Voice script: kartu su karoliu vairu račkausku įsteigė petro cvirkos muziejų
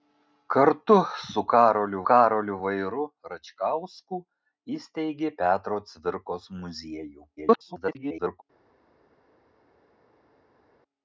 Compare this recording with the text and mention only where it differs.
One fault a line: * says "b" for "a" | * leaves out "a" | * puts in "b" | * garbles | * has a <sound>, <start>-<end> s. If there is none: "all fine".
* puts in "karoliu"
* garbles